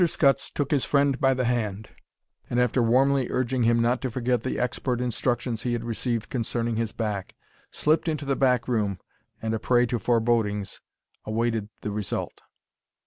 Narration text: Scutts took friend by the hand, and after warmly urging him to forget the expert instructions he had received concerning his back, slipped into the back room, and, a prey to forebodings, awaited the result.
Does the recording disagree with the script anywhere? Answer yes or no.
yes